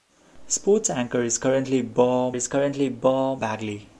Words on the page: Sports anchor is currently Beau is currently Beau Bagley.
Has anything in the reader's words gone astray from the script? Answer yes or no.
no